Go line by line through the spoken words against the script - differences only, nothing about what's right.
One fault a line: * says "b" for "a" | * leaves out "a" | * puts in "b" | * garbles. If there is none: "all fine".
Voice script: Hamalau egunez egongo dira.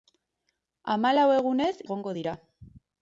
all fine